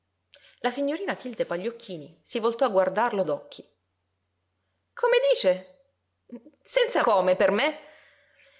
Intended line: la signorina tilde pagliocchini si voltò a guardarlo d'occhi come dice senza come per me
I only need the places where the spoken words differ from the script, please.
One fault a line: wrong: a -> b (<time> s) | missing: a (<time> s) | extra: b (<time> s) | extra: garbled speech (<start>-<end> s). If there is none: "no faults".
no faults